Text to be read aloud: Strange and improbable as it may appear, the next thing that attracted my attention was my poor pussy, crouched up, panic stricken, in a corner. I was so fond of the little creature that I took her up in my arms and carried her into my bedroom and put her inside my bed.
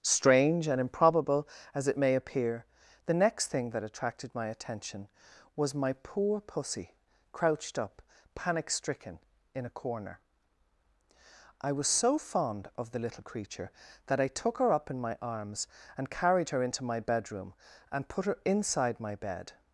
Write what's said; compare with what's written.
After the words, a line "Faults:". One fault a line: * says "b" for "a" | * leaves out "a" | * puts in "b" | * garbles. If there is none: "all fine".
Strange and improbable as it may appear, the next thing that attracted my attention was my poor pussy, crouched up, panic stricken, in a corner. I was so fond of the little creature that I took her up in my arms and carried her into my bedroom and put her inside my bed.
Faults:
all fine